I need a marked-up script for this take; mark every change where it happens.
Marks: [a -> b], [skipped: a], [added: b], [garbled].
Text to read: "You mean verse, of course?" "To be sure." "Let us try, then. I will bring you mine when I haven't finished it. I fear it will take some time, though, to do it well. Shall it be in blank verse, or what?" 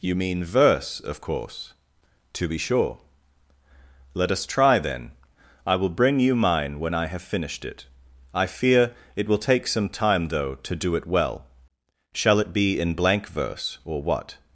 "You mean verse, of course?" "To be sure." "Let us try, then. I will bring you mine when I [haven't -> have] finished it. I fear it will take some time, though, to do it well. Shall it be in blank verse, or what?"